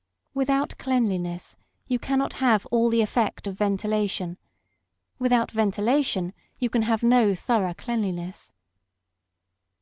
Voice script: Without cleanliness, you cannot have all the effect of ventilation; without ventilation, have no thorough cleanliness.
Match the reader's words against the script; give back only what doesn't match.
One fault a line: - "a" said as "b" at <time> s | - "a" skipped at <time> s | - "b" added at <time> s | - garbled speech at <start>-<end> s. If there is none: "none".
- "you can" added at 6.6 s